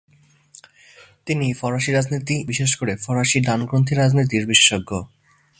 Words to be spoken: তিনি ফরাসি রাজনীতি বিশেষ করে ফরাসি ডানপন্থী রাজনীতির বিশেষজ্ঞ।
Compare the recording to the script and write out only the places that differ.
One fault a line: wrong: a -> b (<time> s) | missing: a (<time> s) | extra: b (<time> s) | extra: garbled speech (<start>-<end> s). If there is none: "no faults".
no faults